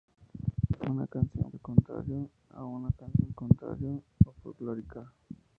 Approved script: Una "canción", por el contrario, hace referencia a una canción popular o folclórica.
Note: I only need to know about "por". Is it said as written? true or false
false